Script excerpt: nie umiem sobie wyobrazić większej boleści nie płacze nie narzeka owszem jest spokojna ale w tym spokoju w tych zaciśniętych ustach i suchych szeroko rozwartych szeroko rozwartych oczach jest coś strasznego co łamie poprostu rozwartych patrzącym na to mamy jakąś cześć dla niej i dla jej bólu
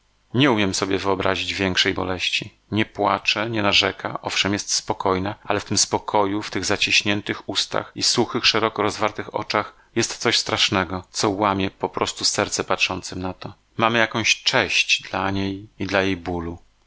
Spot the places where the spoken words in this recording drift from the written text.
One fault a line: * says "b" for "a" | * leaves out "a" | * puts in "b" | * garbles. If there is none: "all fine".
* leaves out "szeroko rozwartych"
* says "serce" for "rozwartych"